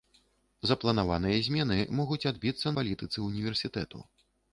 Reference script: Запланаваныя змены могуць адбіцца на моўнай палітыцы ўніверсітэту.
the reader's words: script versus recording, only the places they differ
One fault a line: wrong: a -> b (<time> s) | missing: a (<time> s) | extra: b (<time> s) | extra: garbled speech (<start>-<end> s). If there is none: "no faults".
missing: на моўнай (2.7 s)